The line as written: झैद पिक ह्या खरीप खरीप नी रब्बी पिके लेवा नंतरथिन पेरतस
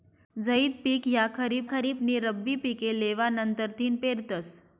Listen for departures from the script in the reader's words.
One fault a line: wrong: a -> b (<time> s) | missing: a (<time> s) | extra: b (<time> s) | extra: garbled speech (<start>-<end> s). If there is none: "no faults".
no faults